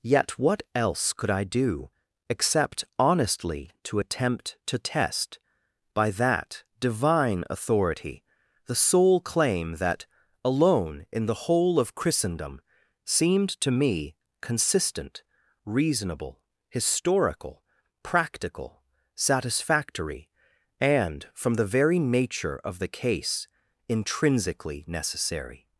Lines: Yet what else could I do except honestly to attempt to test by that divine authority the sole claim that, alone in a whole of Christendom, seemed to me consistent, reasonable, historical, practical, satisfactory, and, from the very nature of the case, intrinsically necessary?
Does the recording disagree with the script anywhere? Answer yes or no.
yes